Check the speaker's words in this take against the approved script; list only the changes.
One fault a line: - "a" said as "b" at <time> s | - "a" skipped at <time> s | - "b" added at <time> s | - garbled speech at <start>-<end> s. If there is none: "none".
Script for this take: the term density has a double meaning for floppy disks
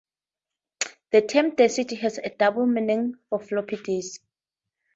none